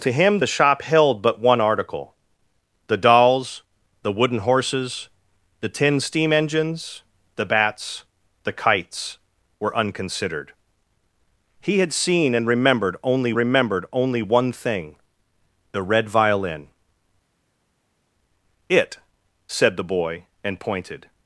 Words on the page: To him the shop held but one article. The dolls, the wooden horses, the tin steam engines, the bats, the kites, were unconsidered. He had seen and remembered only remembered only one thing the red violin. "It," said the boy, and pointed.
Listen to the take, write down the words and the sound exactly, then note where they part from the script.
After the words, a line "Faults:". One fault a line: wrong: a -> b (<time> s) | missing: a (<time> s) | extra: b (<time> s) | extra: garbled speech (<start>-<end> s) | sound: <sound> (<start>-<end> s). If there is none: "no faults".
To him the shop held but one article. The dolls, the wooden horses, the tin steam engines, the bats, the kites, were unconsidered. He had seen and remembered only remembered only one thing the red violin. "It," said the boy, and pointed.
Faults:
no faults